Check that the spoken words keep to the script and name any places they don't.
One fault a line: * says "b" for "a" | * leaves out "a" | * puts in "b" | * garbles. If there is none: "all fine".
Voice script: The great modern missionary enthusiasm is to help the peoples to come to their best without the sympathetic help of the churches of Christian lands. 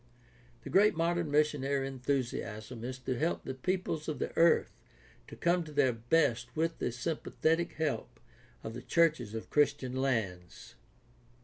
* puts in "of the earth"
* says "with" for "without"